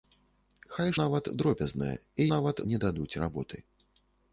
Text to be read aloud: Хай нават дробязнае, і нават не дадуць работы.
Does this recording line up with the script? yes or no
yes